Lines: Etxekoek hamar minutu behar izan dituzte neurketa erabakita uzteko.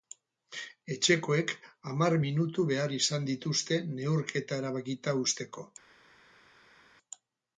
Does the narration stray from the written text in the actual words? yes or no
no